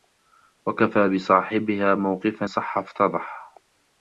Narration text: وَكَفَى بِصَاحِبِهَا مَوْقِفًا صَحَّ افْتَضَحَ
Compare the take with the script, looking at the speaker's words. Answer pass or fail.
pass